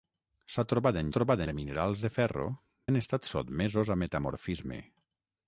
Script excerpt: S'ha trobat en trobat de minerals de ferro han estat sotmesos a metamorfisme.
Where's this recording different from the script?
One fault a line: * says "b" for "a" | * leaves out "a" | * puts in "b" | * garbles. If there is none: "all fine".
all fine